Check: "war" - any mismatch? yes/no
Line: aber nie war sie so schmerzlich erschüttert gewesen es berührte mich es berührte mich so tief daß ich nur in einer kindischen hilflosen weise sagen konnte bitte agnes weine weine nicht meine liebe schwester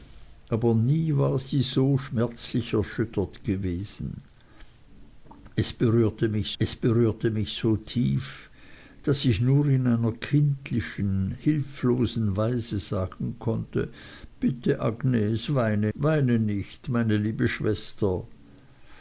no